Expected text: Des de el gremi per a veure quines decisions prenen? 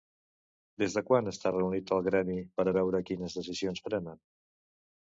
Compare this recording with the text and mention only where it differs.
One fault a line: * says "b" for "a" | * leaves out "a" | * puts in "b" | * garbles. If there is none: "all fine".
* puts in "quan està reunit"